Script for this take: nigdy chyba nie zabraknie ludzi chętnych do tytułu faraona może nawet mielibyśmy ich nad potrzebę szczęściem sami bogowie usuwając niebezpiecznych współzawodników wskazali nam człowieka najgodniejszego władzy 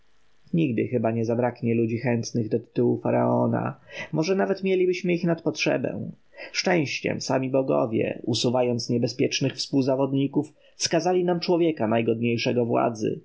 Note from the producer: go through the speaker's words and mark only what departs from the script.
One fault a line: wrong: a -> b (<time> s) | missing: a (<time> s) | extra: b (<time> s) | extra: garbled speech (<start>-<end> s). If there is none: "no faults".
no faults